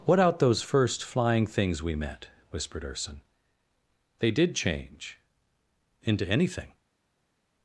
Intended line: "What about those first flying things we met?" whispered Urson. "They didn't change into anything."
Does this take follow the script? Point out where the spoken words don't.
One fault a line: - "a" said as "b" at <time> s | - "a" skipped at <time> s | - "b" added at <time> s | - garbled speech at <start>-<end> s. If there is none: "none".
- "about" said as "out" at 0.2 s
- "didn't" said as "did" at 4.3 s